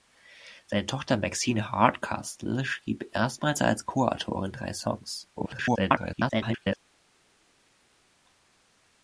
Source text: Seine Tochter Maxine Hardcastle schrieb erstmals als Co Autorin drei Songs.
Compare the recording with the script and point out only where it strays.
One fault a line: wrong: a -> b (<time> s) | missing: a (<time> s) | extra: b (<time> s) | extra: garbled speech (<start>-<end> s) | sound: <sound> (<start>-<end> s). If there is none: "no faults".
extra: garbled speech (5.4-6.8 s)